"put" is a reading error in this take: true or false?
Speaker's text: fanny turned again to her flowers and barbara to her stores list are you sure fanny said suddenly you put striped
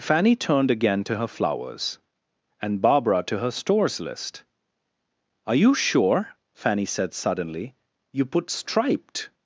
false